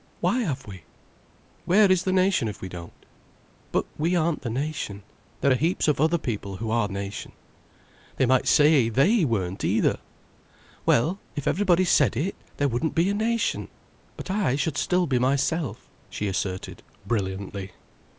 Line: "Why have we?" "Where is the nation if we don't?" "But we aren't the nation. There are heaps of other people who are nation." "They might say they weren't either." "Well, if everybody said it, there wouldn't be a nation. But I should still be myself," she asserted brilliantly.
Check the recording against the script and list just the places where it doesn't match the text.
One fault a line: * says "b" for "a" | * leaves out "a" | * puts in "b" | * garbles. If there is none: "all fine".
all fine